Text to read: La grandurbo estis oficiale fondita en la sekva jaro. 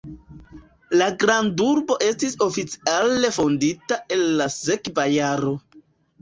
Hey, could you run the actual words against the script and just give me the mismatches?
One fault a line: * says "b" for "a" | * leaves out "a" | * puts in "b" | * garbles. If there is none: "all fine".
all fine